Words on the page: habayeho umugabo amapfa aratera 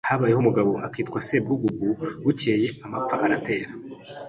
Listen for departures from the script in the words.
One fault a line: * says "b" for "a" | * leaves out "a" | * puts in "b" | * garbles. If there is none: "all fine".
* puts in "akitwa sebwugugu bukeye"